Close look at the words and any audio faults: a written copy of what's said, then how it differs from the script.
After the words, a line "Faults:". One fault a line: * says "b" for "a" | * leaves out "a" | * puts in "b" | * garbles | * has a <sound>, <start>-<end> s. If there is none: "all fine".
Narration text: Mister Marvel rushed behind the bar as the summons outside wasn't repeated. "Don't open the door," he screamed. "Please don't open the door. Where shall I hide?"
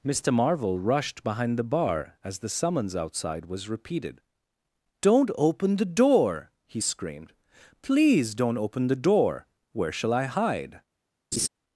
Mister Marvel rushed behind the bar as the summons outside was repeated. "Don't open the door," he screamed. "Please don't open the door. Where shall I hide?"
Faults:
* says "was" for "wasn't"
* has a laugh, 11.3-11.5 s